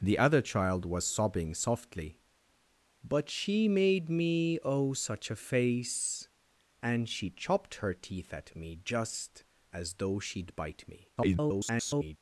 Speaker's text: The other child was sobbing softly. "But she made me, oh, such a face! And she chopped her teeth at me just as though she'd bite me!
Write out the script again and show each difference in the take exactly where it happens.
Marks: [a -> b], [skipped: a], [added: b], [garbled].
The other child was sobbing softly. "But she made me, oh, such a face! And she chopped her teeth at me just as though she'd bite me! [garbled]